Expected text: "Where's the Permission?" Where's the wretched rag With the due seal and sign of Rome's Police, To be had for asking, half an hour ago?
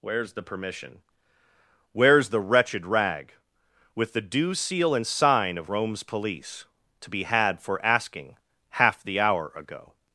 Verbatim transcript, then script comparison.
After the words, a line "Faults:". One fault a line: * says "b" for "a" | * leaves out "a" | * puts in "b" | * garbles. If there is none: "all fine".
"Where's the Permission?" Where's the wretched rag With the due seal and sign of Rome's Police, To be had for asking, half the hour ago?
Faults:
* says "the" for "an"